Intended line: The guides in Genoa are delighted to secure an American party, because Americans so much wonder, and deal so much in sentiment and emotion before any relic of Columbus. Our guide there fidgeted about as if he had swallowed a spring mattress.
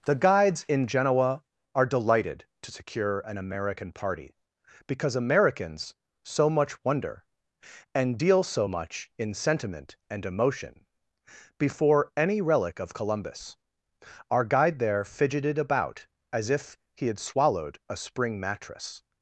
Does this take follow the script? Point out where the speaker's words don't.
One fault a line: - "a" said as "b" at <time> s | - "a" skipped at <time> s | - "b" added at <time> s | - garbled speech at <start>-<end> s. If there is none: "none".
none